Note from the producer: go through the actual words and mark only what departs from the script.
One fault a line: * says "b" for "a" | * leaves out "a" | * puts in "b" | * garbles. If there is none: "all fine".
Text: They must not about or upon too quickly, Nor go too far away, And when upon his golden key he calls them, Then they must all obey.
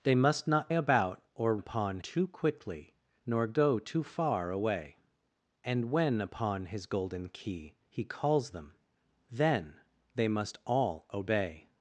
all fine